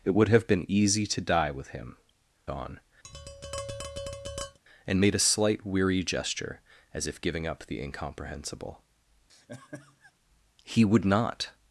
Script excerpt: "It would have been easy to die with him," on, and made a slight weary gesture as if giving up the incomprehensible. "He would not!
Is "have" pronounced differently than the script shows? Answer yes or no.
no